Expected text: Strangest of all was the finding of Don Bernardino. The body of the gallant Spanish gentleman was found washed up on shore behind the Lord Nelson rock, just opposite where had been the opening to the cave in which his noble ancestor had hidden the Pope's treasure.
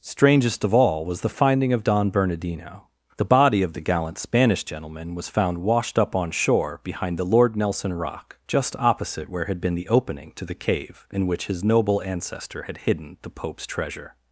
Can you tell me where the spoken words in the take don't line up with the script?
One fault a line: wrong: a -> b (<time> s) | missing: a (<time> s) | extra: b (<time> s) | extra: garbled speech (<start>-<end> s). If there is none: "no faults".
no faults